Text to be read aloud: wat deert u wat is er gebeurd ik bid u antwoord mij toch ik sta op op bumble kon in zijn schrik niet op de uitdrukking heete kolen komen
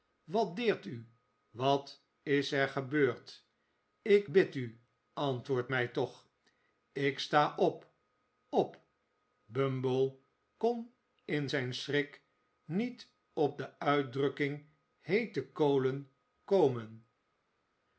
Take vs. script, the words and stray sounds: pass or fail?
pass